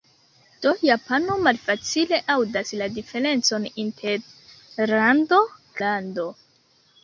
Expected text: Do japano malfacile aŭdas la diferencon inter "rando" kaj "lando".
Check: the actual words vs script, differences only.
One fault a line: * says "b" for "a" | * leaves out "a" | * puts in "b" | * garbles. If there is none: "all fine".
* leaves out "kaj"